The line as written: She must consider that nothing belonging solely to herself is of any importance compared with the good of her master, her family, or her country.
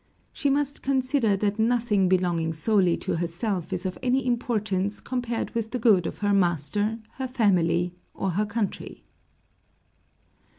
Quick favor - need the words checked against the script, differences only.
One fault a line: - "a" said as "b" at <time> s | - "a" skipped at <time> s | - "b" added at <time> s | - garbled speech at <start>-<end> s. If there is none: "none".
none